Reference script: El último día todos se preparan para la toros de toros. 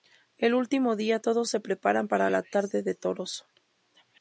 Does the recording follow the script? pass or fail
fail